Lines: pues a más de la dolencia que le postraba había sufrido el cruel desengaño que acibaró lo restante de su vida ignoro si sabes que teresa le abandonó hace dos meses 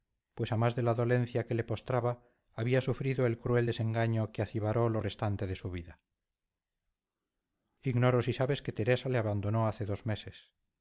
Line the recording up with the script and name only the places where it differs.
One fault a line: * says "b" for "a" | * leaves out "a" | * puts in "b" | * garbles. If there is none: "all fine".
all fine